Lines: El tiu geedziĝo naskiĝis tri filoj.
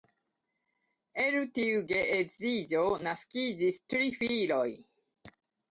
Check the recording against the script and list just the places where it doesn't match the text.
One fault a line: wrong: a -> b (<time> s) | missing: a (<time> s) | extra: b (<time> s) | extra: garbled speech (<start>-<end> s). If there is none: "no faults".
no faults